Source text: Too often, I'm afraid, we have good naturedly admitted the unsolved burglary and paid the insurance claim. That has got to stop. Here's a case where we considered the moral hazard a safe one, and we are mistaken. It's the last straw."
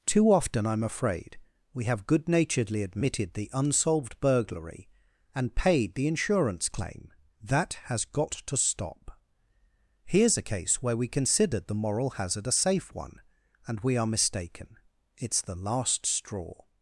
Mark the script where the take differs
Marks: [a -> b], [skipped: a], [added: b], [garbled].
Too often, I'm afraid, we have good naturedly admitted the unsolved burglary and paid the insurance claim. That has got to stop. Here's a case where we considered the moral hazard a safe one, and we are mistaken. It's the last straw."